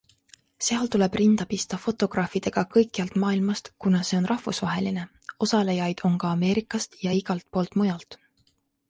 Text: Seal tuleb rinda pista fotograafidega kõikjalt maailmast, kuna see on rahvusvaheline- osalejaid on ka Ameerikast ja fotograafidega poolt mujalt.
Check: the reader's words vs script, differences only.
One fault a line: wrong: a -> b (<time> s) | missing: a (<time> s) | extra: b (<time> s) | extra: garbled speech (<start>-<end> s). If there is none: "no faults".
wrong: fotograafidega -> igalt (7.2 s)